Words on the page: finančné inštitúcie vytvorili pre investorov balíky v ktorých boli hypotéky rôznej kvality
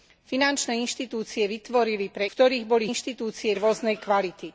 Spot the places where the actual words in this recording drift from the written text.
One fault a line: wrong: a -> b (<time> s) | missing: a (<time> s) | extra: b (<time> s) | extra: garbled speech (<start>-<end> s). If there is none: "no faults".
missing: investorov balíky v (2.2 s)
wrong: hypotéky -> inštitúcie (2.9 s)